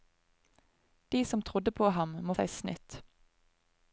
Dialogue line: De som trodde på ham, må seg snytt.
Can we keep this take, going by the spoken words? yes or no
yes